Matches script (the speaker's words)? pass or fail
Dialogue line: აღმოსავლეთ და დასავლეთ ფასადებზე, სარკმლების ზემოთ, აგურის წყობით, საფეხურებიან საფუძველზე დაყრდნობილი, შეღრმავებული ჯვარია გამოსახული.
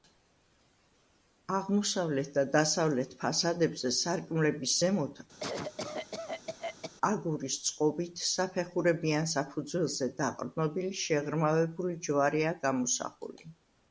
pass